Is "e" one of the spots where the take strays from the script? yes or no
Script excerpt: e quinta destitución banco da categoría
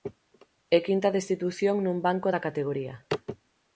no